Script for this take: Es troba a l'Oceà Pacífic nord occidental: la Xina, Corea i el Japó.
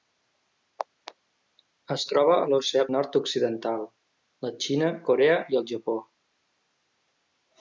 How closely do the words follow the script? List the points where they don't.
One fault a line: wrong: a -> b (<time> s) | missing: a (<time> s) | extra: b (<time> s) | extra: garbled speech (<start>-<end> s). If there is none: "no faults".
missing: Pacífic (2.9 s)